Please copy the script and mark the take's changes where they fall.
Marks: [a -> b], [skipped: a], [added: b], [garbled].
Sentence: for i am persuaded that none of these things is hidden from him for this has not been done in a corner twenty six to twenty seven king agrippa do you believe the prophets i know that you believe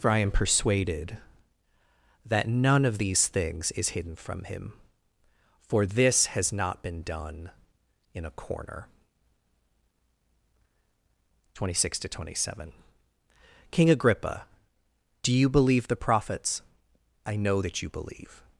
for i am persuaded that none of these things is hidden from him for this has not been done in a corner twenty six to twenty seven king agrippa do you believe the prophets i know that you believe